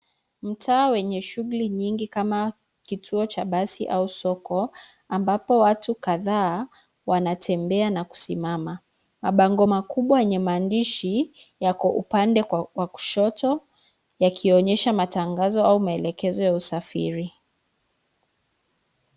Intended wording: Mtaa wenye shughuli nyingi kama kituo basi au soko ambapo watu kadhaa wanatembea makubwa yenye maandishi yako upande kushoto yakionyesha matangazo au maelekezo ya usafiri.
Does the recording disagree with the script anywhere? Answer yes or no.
yes